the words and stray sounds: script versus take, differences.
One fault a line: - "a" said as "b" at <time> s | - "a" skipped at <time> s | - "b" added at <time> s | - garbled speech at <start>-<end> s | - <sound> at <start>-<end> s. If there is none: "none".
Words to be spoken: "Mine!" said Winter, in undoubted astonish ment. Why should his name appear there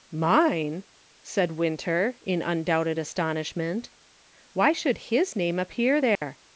- dropout at 6.1-6.2 s